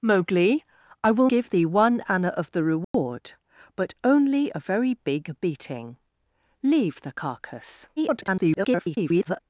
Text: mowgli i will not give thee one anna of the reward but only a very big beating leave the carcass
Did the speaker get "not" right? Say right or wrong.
wrong